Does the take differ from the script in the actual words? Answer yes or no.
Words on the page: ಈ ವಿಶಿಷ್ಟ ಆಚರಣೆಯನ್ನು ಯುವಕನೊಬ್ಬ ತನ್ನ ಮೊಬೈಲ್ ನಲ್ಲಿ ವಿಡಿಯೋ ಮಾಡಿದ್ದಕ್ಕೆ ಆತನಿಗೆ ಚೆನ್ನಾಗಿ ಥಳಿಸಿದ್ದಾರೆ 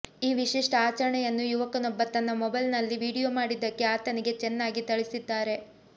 no